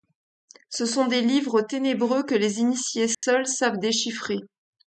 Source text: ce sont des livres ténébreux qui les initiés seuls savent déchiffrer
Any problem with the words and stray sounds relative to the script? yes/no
yes